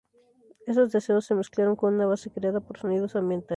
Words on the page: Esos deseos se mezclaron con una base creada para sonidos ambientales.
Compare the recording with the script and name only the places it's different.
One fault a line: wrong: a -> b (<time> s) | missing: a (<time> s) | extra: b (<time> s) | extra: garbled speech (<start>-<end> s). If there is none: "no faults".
wrong: para -> por (2.6 s)